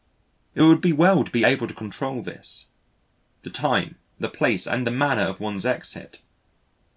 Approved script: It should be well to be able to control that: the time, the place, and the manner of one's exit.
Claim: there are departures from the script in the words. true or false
true